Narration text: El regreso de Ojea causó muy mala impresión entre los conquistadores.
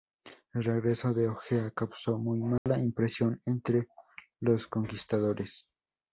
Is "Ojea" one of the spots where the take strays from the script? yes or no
no